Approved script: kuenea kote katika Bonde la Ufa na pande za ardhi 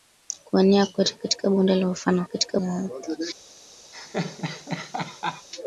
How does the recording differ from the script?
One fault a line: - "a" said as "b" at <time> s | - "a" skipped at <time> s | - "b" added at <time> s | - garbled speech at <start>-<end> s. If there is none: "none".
- "pande" said as "katika" at 2.2 s